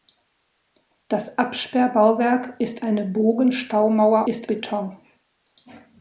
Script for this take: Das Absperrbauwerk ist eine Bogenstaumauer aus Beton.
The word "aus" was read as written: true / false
false